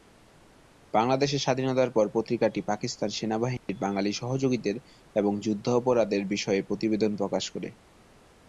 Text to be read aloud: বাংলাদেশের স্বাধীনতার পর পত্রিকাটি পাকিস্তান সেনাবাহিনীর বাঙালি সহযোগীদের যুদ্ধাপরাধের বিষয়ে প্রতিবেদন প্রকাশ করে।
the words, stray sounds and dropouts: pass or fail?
fail